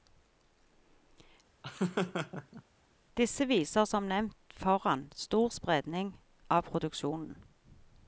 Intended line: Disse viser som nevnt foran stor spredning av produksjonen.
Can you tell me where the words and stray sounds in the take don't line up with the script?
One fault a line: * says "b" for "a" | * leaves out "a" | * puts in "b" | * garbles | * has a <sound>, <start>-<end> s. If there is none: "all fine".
* has a laugh, 1.6-2.6 s